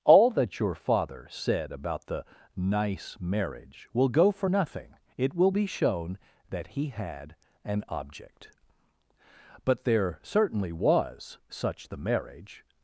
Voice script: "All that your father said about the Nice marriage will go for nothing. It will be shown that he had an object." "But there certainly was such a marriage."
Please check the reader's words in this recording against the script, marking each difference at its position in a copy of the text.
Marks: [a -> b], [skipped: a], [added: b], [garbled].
"All that your father said about the Nice marriage will go for nothing. It will be shown that he had an object." "But there certainly was such [a -> the] marriage."